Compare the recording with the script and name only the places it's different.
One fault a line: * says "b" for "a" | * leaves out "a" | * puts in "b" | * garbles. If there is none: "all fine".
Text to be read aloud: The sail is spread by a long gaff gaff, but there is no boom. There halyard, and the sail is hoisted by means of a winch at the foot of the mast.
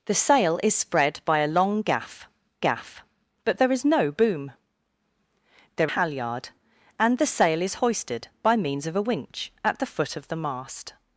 all fine